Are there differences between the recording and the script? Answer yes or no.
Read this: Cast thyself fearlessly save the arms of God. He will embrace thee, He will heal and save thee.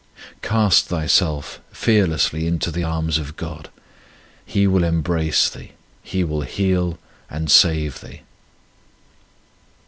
yes